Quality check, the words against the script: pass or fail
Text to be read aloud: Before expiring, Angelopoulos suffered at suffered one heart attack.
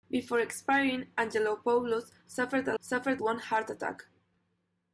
pass